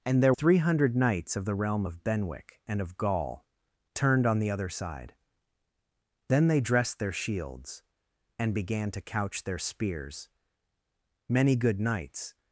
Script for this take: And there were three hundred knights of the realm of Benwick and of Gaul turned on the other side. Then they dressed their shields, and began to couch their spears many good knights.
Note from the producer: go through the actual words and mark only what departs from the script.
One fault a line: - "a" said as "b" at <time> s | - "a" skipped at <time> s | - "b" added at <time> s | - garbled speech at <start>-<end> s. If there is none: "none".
- "were" skipped at 0.3 s